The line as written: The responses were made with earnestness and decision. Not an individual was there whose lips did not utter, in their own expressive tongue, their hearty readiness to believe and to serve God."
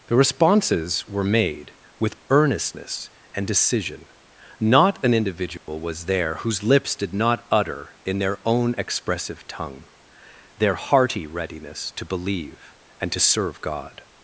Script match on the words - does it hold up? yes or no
yes